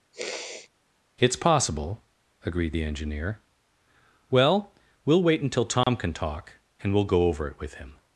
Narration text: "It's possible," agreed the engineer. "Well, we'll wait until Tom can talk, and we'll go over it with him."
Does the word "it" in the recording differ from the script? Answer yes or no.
no